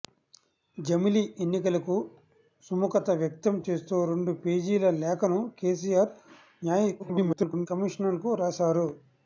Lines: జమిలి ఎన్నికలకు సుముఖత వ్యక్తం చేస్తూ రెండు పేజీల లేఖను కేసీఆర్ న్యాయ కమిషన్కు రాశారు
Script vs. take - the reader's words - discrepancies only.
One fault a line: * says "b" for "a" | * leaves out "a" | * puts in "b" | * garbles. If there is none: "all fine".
* garbles